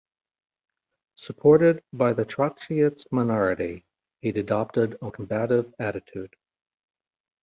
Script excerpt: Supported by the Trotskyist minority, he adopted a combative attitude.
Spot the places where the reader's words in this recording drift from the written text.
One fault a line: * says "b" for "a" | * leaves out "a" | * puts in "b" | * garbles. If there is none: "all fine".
all fine